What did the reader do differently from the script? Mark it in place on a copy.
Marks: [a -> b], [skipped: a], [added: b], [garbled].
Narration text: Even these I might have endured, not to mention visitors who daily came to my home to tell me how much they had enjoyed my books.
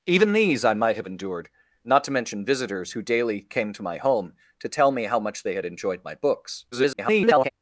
Even these I might have endured, not to mention visitors who daily came to my home to tell me how much they had enjoyed my books. [garbled]